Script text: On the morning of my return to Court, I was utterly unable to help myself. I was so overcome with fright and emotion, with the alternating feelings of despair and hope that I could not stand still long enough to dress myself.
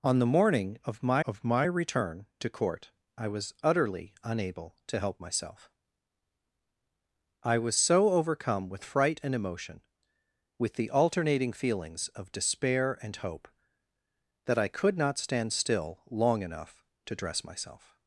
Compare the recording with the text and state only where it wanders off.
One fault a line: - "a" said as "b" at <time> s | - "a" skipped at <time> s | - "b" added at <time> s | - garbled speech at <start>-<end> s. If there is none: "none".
- "of my" added at 1.2 s